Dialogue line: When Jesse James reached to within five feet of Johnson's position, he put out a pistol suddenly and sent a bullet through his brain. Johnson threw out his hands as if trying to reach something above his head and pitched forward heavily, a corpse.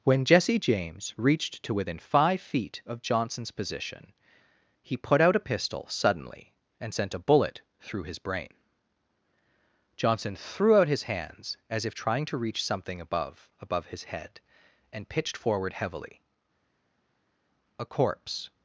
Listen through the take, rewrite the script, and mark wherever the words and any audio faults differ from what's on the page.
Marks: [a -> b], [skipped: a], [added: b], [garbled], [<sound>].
When Jesse James reached to within five feet of Johnson's position, he put out a pistol suddenly and sent a bullet through his brain. Johnson threw out his hands as if trying to reach something above [added: above] his head and pitched forward heavily, a corpse.